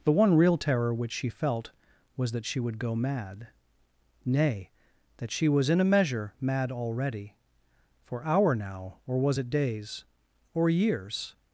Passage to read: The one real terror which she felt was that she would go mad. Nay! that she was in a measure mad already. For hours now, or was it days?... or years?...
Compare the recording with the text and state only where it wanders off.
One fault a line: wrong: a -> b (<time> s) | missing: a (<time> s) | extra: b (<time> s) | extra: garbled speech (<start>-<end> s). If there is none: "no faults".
wrong: hours -> hour (8.2 s)